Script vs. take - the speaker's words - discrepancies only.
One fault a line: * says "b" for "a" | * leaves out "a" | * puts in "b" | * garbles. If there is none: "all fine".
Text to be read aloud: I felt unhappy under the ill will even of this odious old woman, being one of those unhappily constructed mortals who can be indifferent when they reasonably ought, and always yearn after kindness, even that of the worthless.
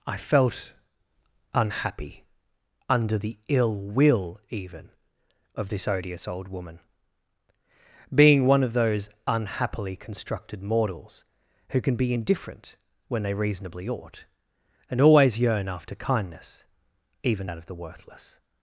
all fine